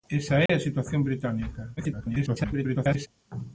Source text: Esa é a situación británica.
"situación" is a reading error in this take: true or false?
false